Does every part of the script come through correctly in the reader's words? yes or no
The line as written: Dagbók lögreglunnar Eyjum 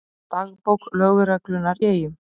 yes